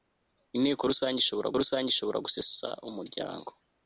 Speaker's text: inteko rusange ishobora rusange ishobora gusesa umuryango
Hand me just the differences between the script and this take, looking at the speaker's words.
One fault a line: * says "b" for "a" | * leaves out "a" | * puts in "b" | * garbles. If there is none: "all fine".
all fine